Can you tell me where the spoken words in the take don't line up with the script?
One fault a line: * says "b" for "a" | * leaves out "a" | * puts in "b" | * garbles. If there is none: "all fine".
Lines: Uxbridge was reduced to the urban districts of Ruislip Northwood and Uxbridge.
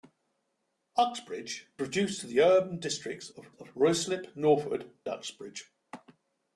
* leaves out "was"
* puts in "of"
* leaves out "and"